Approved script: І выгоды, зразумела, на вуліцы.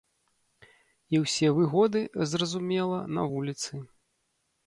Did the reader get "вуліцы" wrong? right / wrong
right